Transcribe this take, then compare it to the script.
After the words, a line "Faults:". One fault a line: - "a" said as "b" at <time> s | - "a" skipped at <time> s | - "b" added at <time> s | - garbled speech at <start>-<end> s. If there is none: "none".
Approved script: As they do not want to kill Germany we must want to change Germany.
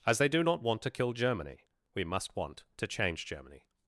As they do not want to kill Germany we must want to change Germany.
Faults:
none